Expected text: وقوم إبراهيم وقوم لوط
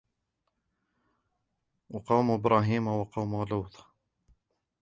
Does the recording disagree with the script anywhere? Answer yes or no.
no